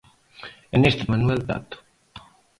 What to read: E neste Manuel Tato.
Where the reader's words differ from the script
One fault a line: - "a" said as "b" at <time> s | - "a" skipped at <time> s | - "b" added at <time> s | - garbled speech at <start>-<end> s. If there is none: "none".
none